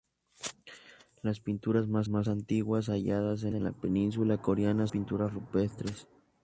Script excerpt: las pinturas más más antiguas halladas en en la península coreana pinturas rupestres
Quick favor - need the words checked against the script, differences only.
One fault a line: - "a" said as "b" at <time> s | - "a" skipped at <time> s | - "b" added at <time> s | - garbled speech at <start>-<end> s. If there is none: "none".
none